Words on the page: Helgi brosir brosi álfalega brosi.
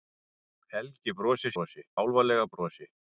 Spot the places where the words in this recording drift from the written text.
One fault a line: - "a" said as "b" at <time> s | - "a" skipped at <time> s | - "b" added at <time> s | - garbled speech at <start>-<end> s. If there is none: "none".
none